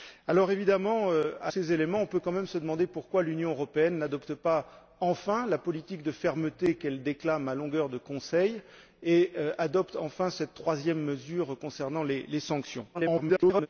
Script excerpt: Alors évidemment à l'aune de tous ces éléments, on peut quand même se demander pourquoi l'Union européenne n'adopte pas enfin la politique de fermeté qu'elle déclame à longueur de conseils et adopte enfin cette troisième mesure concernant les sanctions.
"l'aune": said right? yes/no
no